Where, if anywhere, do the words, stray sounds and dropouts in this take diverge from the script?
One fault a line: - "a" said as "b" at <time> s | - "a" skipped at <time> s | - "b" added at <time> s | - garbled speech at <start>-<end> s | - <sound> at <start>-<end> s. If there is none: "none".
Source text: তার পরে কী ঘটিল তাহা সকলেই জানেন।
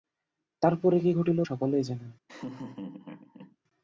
- "তাহা" skipped at 1.4 s
- laugh at 2.3-3.6 s